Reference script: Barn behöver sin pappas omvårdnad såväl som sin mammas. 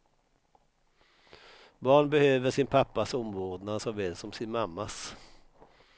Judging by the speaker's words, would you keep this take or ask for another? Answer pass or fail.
pass